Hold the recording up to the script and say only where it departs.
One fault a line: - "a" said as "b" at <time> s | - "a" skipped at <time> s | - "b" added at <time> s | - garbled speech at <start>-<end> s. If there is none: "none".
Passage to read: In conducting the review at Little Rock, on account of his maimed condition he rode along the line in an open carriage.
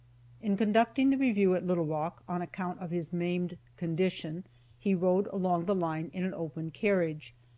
none